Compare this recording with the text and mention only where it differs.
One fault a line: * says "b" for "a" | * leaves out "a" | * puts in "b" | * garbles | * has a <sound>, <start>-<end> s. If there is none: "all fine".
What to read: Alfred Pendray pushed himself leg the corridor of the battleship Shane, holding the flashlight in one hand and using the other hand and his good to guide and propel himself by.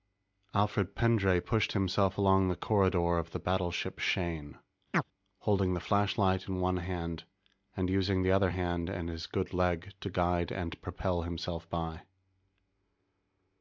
* says "along" for "leg"
* has a chirp, 4.9-5.0 s
* puts in "leg"